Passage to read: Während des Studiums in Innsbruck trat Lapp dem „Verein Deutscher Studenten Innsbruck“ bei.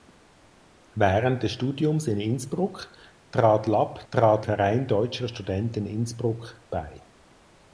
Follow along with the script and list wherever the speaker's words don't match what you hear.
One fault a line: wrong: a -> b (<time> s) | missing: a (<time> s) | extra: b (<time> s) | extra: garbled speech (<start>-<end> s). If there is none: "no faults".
wrong: dem -> trat (4.1 s)